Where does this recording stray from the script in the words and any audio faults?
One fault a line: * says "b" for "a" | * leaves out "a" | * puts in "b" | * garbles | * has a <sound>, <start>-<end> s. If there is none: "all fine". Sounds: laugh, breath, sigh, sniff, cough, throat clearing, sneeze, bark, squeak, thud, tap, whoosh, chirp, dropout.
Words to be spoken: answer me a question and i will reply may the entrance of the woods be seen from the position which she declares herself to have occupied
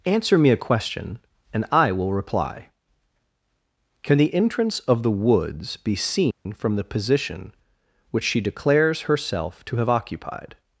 * says "can" for "may"
* has a dropout, 6.3-6.5 s